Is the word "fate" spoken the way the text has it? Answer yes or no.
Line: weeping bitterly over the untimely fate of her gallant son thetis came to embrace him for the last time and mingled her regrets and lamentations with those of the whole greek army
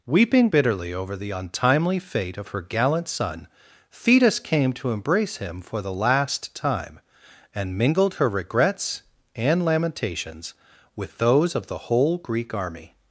yes